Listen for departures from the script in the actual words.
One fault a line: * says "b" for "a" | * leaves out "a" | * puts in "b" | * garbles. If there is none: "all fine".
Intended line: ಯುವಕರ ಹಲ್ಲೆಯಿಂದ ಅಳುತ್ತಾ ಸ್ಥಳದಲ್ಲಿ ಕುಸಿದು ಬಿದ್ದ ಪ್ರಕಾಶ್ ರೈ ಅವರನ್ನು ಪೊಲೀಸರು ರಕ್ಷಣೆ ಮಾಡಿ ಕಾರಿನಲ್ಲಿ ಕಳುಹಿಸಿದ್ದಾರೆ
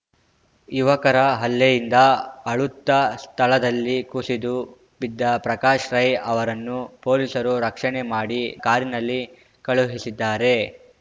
all fine